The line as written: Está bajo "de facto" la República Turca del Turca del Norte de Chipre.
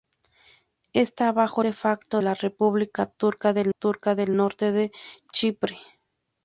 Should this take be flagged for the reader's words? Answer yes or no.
no